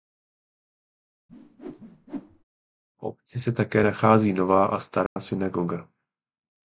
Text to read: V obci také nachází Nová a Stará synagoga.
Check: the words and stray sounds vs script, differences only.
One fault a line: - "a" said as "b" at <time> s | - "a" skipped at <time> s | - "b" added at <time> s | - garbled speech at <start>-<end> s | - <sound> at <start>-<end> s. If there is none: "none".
- whoosh at 1.3-2.4 s
- "se" added at 3.4 s
- dropout at 5.1-5.2 s